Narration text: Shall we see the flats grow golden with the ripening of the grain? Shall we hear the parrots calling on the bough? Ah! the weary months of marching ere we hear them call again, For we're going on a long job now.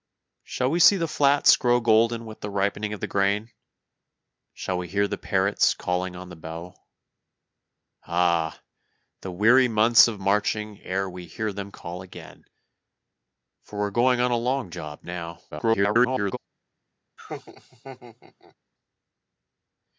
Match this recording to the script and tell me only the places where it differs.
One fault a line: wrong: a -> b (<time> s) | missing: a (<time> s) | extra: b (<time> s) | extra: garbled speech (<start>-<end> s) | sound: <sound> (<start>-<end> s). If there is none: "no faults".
extra: garbled speech (15.5-16.4 s)
sound: laugh (17.2-18.6 s)